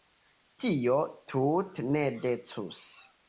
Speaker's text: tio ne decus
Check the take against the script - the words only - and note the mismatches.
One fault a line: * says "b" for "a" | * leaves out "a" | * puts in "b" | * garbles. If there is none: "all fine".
* puts in "tute"